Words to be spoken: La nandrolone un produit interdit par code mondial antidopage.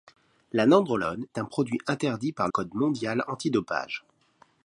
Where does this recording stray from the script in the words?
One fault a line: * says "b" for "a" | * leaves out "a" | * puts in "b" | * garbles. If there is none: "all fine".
all fine